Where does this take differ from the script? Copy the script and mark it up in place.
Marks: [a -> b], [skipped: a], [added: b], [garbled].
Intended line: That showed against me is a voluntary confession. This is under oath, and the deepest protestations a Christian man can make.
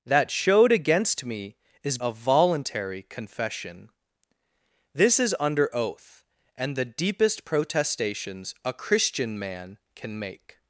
That showed against me is a voluntary confession. This is under oath, and the deepest protestations a Christian man can make.